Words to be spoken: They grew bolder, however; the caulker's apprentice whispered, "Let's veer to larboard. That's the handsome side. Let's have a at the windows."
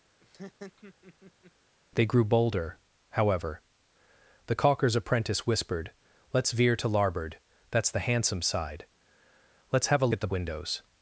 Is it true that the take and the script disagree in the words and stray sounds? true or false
true